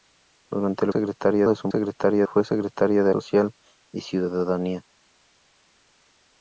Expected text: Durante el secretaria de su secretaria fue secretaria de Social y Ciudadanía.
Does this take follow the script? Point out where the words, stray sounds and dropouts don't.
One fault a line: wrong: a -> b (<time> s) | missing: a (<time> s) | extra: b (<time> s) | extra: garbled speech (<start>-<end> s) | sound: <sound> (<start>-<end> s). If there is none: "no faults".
no faults